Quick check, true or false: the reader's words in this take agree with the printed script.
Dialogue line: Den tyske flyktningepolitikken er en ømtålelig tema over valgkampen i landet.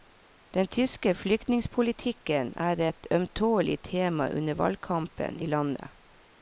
false